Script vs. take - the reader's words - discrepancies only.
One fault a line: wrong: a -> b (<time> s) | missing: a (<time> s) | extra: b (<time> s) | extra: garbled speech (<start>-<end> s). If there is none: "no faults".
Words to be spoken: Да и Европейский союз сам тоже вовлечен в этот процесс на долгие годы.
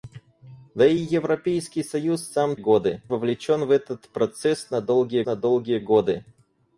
wrong: тоже -> годы (2.5 s)
extra: на долгие (5.2 s)